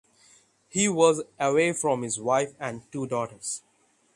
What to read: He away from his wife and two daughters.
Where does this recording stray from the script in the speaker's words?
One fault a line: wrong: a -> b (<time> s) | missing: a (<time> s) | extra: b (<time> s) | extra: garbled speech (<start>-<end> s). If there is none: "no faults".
extra: was (0.9 s)